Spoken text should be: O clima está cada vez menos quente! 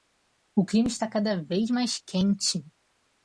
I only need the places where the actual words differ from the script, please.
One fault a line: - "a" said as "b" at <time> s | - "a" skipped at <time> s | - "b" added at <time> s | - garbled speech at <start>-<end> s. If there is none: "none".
- "menos" said as "mais" at 1.7 s